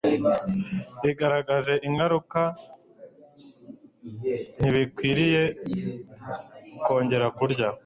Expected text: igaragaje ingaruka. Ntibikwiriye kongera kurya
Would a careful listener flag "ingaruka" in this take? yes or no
no